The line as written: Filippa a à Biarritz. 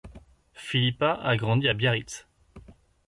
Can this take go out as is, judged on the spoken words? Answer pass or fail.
fail